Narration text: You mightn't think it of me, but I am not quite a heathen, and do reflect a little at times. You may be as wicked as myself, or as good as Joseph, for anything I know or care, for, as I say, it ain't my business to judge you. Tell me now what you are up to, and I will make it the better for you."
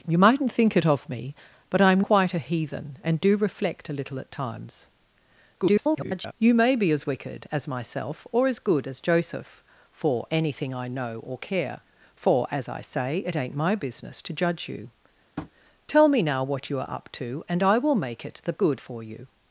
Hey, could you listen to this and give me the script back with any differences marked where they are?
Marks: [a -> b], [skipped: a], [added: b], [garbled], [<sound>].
You mightn't think it of me, but I am [skipped: not] quite a heathen, and do reflect a little at times. [garbled] You may be as wicked as myself, or as good as Joseph, for anything I know or care, for, as I say, it ain't my business to judge you. [tap] Tell me now what you are up to, and I will make it the [better -> good] for you."